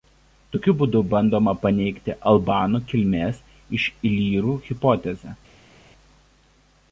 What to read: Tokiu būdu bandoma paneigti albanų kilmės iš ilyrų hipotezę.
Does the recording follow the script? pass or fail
pass